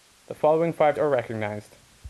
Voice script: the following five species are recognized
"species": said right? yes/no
no